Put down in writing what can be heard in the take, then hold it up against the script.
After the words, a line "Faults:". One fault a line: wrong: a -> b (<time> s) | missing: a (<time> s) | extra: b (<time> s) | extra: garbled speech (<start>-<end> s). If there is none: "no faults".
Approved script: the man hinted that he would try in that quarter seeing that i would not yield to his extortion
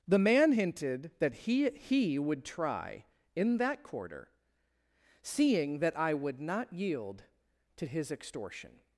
the man hinted that he he would try in that quarter seeing that i would not yield to his extortion
Faults:
extra: he (1.7 s)